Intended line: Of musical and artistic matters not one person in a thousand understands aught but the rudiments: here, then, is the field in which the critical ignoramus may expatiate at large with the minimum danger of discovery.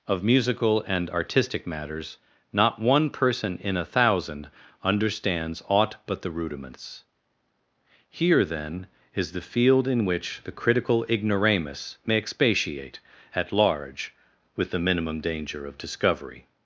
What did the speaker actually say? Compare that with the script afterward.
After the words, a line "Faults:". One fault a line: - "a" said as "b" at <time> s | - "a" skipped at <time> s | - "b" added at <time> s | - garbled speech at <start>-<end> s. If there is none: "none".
Of musical and artistic matters not one person in a thousand understands aught but the rudiments: here, then, is the field in which the critical ignoramus may expatiate at large with the minimum danger of discovery.
Faults:
none